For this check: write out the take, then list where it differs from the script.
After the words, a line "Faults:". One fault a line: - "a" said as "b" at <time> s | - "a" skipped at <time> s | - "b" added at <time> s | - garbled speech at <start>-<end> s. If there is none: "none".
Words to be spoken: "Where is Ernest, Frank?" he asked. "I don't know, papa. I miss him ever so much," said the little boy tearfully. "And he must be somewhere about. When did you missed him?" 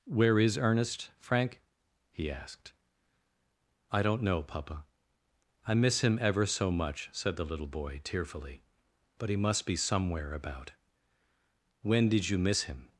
"Where is Ernest, Frank?" he asked. "I don't know, papa. I miss him ever so much," said the little boy tearfully. "But he must be somewhere about. When did you miss him?"
Faults:
- "And" said as "But" at 9.2 s
- "missed" said as "miss" at 12.4 s